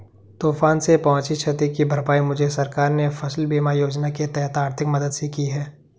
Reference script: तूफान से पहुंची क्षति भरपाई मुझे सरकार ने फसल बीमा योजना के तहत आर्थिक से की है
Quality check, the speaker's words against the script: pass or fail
fail